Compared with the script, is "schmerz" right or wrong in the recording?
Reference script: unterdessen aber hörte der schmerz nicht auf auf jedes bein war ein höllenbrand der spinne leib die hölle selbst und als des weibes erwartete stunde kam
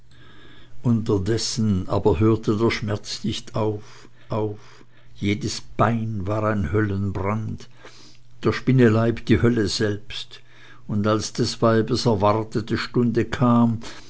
right